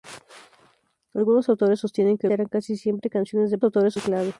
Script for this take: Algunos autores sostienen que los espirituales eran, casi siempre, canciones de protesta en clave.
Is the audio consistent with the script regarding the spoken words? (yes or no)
no